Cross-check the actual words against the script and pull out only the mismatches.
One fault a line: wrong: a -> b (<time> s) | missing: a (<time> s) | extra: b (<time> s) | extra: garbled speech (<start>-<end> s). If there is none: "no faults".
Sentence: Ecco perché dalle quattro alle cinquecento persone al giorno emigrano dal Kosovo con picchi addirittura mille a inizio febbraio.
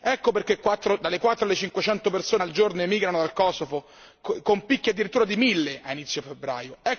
extra: di (5.2 s)